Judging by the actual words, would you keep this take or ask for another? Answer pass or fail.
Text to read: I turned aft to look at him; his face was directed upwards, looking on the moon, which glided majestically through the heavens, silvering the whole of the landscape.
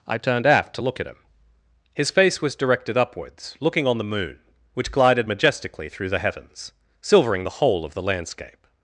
pass